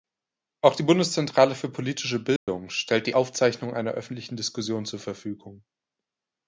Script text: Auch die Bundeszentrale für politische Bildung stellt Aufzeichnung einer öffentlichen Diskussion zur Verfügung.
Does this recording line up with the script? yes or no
no